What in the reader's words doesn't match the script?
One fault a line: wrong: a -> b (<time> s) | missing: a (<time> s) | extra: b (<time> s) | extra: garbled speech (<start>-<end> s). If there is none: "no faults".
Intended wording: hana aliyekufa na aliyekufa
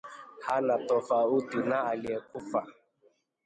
wrong: aliyekufa -> tofauti (0.9 s)